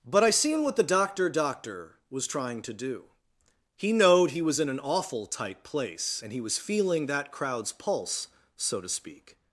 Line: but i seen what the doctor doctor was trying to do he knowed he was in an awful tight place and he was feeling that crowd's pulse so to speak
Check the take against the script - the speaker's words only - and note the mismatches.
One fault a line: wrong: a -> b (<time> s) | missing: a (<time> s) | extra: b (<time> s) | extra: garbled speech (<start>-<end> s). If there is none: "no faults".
no faults